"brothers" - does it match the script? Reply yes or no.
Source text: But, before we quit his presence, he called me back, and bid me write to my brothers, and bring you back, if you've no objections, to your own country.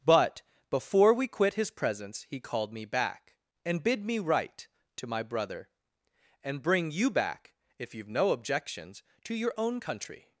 no